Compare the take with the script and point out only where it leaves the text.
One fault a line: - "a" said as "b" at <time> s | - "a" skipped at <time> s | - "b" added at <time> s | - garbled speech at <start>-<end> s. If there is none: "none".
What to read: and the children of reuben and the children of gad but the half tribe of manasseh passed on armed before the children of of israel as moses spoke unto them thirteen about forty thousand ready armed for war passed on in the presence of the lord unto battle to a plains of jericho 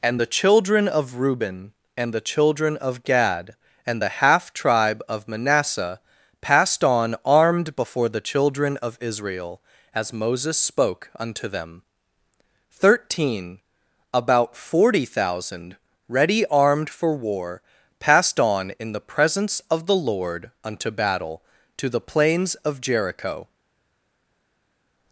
- "but" said as "and" at 3.9 s
- "of" skipped at 9.0 s
- "a" said as "the" at 21.9 s